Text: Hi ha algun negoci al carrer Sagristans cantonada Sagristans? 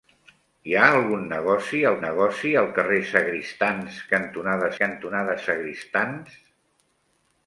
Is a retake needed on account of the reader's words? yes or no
yes